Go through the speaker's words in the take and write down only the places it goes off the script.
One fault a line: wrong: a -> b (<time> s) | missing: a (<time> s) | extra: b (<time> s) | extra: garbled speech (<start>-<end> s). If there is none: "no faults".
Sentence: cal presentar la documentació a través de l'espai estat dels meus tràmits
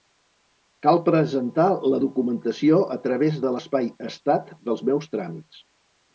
no faults